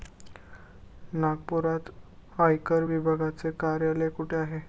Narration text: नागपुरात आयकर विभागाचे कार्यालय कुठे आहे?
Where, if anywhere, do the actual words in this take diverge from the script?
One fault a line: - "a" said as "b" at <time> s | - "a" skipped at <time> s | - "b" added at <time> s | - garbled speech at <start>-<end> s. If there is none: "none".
none